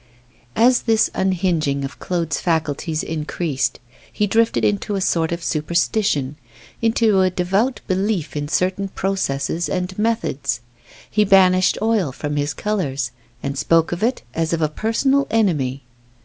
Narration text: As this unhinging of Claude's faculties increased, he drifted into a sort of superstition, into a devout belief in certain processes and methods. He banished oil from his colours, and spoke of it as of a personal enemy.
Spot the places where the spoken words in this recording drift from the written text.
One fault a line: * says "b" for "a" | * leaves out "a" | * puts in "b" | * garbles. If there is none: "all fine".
all fine